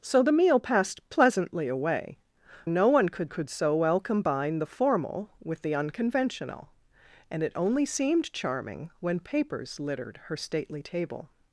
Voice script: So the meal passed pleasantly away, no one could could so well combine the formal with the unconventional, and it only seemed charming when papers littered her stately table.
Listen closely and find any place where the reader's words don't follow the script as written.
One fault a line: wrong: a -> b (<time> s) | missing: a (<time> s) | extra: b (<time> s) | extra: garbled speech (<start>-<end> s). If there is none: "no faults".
no faults